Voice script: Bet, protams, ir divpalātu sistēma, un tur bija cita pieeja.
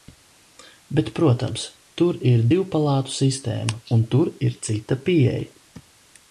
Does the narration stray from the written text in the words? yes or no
yes